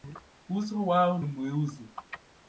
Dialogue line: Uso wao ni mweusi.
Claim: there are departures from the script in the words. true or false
false